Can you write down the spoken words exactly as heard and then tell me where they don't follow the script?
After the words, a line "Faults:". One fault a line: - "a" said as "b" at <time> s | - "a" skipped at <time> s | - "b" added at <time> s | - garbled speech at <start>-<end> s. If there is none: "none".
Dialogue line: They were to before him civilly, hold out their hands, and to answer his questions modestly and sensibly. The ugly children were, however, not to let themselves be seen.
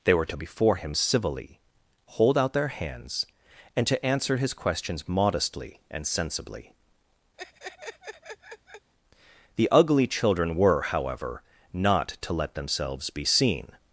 They were to before him civilly, hold out their hands, and to answer his questions modestly and sensibly. The ugly children were, however, not to let themselves be seen.
Faults:
none